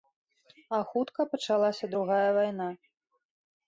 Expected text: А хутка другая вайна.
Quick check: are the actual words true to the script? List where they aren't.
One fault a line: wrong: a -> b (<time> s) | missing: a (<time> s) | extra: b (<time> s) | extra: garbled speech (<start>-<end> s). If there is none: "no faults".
extra: пачалася (1.4 s)